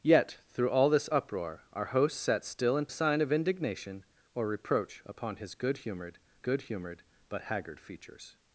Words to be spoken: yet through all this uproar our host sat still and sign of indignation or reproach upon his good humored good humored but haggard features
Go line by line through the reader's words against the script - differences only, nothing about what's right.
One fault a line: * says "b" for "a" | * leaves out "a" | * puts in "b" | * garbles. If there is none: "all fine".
all fine